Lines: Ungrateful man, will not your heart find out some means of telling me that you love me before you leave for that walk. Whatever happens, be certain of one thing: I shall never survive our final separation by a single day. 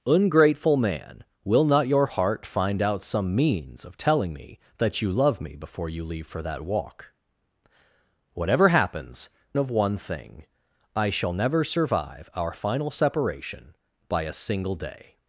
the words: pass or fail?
fail